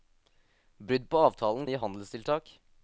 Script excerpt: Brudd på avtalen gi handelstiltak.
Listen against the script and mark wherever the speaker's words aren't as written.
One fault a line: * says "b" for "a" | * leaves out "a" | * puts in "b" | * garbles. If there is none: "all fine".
all fine